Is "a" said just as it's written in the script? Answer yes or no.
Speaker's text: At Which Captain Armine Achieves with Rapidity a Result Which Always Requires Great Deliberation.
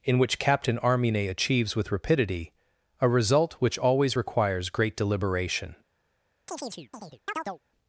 yes